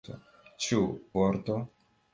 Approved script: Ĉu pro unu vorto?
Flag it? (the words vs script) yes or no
yes